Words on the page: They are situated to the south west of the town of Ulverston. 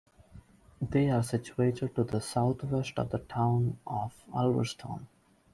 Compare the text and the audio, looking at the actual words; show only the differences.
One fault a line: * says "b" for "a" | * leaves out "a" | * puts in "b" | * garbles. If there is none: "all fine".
all fine